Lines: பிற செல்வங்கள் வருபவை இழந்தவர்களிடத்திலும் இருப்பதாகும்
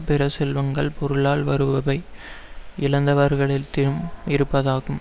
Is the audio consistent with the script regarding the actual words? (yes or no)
no